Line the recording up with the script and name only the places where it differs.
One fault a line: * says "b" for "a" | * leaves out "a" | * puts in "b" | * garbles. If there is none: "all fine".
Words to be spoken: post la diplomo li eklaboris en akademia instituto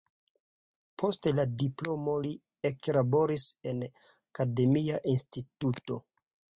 all fine